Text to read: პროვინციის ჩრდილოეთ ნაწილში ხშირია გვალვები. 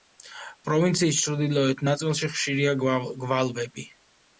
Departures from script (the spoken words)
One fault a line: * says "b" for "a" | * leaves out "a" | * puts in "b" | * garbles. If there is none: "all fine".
all fine